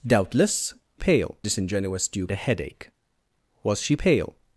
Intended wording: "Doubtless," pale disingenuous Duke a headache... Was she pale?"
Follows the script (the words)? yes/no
yes